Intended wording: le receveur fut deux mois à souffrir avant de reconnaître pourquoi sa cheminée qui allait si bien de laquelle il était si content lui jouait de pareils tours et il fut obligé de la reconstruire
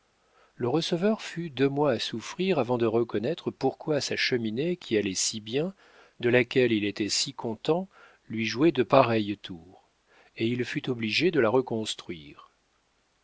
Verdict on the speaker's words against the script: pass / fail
pass